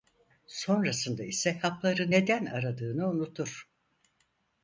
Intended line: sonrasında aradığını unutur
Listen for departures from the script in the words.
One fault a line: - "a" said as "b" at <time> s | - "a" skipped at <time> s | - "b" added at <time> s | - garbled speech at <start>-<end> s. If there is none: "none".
- "ise hapları neden" added at 1.2 s